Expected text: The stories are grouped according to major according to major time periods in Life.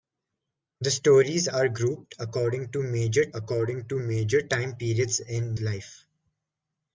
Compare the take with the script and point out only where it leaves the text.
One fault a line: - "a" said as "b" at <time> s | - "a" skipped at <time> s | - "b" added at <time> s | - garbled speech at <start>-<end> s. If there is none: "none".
none